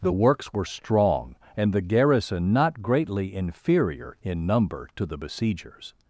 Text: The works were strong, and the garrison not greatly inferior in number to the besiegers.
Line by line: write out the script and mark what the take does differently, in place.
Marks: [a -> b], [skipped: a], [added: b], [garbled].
The works were strong, and the garrison not greatly inferior in number to the besiegers.